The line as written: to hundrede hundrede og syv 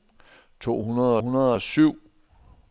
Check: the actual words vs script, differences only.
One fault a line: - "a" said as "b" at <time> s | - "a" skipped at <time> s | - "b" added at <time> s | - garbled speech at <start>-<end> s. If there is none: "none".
none